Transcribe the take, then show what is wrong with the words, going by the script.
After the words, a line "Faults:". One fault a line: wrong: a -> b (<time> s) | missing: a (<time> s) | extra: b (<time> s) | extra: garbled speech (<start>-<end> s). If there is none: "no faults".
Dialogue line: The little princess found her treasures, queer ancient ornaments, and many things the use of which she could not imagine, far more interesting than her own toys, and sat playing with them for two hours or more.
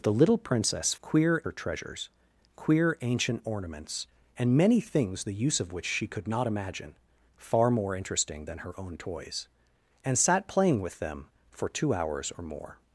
The little princess queer her treasures, queer ancient ornaments, and many things the use of which she could not imagine, far more interesting than her own toys, and sat playing with them for two hours or more.
Faults:
wrong: found -> queer (1.0 s)